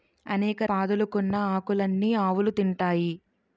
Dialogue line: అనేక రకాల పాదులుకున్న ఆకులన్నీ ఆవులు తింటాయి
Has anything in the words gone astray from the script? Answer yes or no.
yes